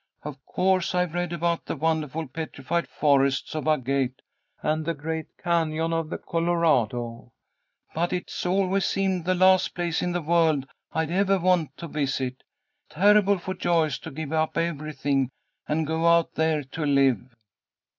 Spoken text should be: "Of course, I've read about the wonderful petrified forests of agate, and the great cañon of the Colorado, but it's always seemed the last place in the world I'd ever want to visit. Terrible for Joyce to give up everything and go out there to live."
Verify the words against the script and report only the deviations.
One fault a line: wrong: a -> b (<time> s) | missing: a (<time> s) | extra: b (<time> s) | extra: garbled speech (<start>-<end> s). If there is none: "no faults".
no faults